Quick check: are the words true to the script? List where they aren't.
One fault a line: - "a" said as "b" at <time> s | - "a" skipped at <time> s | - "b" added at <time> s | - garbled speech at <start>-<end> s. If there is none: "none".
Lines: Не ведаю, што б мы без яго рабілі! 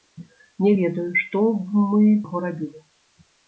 - "без" skipped at 2.1 s